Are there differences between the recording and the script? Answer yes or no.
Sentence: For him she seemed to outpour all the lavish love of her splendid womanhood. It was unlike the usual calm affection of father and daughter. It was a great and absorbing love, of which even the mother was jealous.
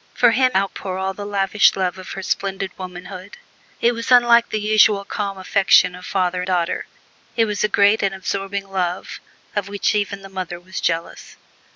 yes